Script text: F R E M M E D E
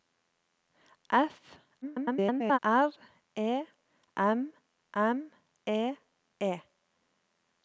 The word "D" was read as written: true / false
false